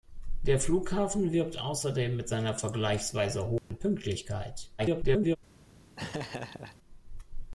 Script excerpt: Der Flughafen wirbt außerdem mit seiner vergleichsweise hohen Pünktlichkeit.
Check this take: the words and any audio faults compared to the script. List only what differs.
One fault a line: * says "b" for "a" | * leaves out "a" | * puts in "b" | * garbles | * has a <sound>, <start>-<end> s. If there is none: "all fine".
* has a dropout, 3.6-3.7 s
* garbles
* has a laugh, 6.0-6.8 s